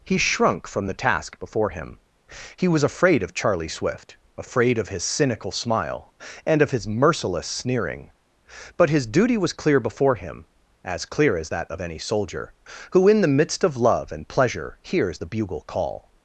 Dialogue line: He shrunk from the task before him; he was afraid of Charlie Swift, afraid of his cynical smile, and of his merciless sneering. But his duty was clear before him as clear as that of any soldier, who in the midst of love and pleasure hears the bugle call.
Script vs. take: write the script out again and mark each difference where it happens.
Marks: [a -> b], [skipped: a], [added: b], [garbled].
He shrunk from the task before him; he was afraid of Charlie Swift, afraid of his cynical smile, and of his merciless sneering. But his duty was clear before him as clear as that of any soldier, who in the midst of love and pleasure hears the bugle call.